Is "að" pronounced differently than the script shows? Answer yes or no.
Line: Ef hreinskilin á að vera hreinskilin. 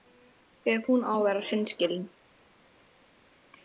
no